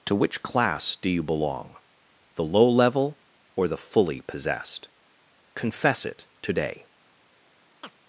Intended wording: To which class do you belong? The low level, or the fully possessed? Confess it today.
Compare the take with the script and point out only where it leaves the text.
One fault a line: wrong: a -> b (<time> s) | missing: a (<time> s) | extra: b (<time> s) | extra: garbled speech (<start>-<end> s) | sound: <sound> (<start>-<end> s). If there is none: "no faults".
sound: chirp (7.8-7.9 s)